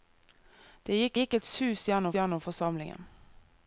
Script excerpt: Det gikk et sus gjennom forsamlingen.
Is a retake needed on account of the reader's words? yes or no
yes